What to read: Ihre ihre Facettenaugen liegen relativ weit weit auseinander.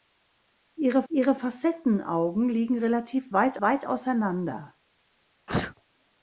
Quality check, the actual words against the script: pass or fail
pass